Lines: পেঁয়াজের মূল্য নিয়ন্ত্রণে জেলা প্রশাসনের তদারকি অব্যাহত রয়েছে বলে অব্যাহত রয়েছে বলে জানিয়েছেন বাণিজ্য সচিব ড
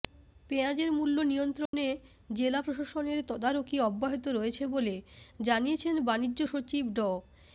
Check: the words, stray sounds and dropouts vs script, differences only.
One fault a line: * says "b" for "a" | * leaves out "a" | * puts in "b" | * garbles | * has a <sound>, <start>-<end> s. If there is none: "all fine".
* has a dropout, 1.7-1.7 s
* leaves out "অব্যাহত রয়েছে বলে"